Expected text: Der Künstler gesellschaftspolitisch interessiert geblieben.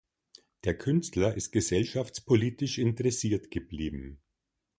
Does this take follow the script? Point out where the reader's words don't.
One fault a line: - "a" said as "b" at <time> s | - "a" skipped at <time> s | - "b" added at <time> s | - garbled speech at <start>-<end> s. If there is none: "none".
- "ist" added at 1.3 s